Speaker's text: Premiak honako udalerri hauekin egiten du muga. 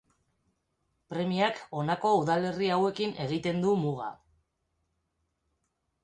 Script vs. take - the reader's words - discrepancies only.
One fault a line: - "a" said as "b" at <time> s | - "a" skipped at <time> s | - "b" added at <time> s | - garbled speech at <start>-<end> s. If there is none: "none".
none